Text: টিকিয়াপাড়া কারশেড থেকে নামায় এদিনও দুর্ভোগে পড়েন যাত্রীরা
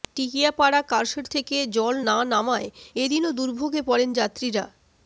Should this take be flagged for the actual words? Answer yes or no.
yes